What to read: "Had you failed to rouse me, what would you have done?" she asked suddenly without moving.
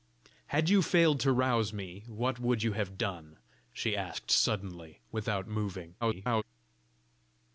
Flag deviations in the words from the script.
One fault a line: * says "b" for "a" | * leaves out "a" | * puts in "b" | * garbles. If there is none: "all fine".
* garbles